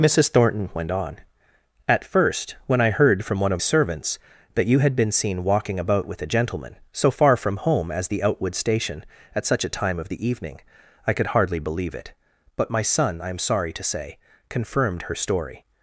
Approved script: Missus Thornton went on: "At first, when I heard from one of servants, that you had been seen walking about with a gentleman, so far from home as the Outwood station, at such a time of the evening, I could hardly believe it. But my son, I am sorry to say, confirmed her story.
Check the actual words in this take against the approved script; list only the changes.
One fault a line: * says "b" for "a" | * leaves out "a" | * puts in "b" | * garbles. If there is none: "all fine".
all fine